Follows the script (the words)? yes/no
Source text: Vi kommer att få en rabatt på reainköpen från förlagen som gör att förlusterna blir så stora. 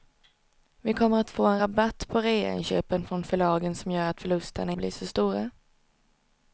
yes